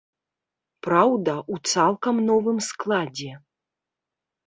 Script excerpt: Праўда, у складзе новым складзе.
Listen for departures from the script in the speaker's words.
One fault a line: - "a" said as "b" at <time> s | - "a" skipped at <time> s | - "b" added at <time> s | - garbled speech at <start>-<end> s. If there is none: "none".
- "складзе" said as "цалкам" at 1.7 s